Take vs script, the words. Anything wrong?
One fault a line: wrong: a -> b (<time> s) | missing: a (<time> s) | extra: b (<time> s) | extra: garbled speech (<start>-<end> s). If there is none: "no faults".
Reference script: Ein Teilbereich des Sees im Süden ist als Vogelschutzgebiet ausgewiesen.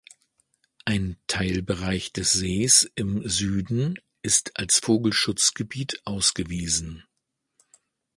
no faults